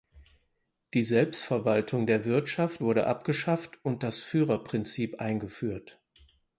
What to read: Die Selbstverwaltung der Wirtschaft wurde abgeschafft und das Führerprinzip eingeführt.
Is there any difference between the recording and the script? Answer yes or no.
no